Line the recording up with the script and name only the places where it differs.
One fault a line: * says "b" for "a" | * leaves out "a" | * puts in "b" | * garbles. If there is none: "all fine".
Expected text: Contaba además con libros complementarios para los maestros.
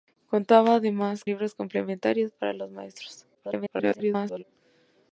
* leaves out "con"
* garbles